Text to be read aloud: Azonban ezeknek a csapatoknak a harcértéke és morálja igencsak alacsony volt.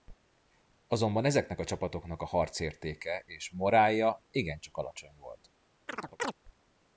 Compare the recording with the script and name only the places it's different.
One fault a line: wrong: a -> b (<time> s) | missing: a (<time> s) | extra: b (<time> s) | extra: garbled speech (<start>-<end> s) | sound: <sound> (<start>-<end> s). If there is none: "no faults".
sound: chirp (5.9-6.3 s)